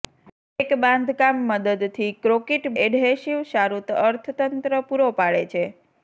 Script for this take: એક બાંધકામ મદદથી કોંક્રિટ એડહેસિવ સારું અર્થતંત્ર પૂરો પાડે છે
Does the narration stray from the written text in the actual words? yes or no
no